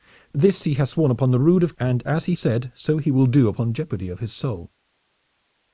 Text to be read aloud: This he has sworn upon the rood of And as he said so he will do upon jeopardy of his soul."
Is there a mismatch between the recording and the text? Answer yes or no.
no